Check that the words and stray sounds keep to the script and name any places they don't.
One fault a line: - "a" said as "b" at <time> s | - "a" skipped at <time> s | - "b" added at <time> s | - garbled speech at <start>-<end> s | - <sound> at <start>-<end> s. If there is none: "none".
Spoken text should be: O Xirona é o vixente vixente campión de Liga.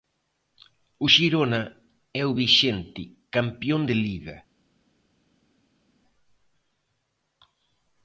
- "vixente" skipped at 3.0 s